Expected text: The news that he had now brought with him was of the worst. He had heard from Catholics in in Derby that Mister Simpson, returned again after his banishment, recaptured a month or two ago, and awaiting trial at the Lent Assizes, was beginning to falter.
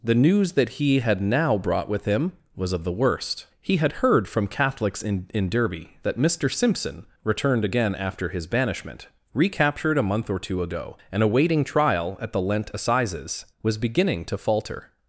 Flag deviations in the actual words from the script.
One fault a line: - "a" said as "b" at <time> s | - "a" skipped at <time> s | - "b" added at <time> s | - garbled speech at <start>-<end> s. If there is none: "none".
none